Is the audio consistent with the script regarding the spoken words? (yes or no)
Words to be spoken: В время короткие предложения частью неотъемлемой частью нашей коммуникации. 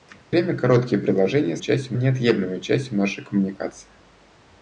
yes